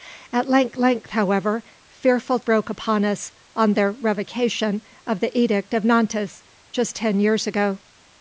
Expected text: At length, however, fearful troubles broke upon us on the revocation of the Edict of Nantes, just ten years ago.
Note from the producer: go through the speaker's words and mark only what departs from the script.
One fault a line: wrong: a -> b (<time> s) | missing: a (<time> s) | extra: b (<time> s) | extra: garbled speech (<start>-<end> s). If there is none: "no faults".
extra: length (0.8 s)
missing: troubles (2.4 s)